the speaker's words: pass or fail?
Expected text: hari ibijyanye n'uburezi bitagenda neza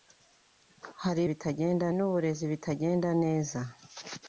fail